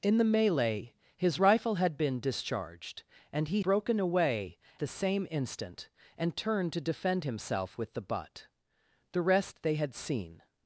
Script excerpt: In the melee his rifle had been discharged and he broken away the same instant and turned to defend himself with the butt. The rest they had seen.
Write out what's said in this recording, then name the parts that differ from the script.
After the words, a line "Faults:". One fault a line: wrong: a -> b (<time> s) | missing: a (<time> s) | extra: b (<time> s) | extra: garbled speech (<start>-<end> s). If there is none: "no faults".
In the melee his rifle had been discharged and he broken away the same instant and turned to defend himself with the butt. The rest they had seen.
Faults:
no faults